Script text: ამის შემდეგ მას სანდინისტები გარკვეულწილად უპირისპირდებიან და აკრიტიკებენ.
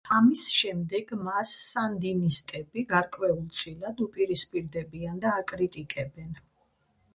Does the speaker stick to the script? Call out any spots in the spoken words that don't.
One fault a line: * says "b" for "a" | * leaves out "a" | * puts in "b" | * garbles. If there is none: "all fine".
all fine